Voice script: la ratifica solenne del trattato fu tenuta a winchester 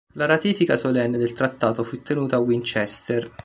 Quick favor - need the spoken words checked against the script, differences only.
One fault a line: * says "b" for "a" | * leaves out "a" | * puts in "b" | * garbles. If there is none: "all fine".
all fine